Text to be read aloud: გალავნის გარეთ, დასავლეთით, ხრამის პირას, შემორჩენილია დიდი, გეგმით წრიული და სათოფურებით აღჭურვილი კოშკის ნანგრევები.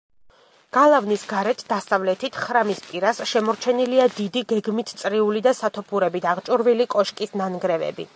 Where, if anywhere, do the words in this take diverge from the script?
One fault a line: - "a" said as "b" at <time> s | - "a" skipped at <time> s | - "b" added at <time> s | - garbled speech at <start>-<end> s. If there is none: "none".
none